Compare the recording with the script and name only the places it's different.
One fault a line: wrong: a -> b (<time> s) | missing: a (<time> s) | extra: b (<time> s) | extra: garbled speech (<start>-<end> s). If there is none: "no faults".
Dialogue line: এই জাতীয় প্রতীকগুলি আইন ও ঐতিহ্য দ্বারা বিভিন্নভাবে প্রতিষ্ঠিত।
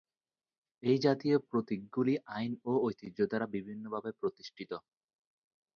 no faults